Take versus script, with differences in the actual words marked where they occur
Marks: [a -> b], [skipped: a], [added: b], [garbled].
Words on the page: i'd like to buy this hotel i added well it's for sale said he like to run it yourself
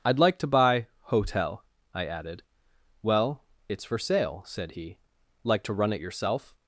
i'd like to buy [skipped: this] hotel i added well it's for sale said he like to run it yourself